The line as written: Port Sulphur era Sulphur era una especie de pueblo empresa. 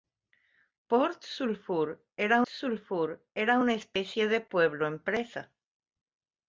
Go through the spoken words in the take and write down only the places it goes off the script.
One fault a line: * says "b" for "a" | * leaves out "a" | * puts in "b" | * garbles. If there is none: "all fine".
all fine